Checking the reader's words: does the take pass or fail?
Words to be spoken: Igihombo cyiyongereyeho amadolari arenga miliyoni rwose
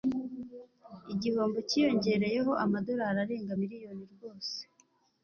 pass